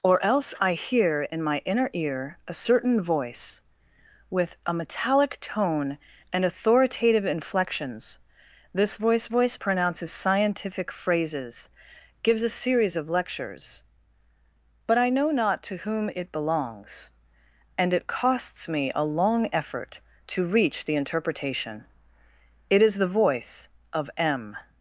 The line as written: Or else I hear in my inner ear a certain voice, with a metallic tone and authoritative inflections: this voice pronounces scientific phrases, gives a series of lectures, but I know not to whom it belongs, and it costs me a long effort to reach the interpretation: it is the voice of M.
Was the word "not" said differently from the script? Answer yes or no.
no